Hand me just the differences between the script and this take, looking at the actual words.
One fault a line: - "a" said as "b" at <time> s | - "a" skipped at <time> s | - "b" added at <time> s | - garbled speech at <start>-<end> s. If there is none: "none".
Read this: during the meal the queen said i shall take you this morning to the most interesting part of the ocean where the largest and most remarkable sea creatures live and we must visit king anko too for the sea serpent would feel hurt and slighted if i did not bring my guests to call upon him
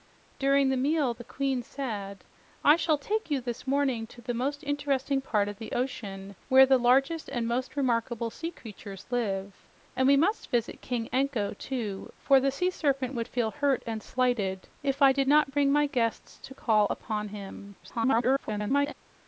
- garbled speech at 17.8-18.9 s